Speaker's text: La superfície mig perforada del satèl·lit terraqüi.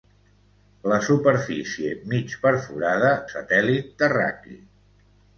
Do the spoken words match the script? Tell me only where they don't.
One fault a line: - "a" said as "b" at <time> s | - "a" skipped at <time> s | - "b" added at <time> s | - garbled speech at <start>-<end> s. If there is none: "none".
- "del" skipped at 3.1 s